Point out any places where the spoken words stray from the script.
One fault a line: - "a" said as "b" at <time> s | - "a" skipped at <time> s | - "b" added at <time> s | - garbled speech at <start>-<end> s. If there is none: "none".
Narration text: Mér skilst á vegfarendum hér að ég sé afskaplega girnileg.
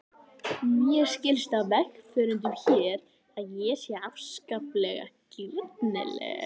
none